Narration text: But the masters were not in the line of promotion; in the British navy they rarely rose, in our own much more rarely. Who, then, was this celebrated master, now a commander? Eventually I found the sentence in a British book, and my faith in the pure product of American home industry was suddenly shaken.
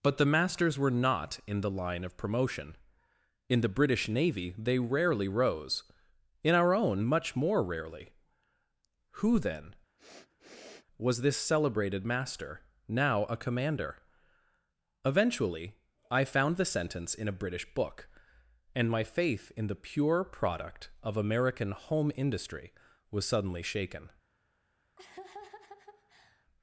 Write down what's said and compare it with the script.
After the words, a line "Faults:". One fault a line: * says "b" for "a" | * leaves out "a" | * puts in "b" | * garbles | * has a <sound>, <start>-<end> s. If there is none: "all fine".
But the masters were not in the line of promotion; in the British navy they rarely rose, in our own much more rarely. Who, then, was this celebrated master, now a commander? Eventually I found the sentence in a British book, and my faith in the pure product of American home industry was suddenly shaken.
Faults:
* has a sniff, 10.0-10.9 s
* has a laugh, 25.0-26.5 s